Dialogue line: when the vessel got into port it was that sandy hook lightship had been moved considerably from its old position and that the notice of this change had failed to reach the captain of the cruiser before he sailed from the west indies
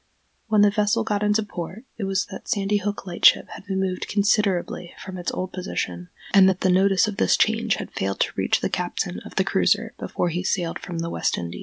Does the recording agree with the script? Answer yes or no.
yes